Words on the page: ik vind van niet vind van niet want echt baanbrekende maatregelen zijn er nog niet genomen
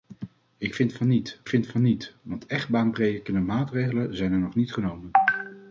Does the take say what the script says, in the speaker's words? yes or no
yes